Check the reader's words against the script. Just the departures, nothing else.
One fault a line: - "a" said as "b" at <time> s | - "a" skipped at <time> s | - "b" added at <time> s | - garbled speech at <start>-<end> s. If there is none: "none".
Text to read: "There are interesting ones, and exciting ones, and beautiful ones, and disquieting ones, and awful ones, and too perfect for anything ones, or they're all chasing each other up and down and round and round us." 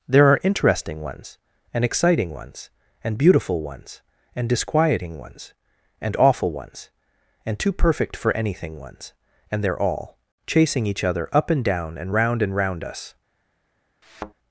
- "or" said as "and" at 9.5 s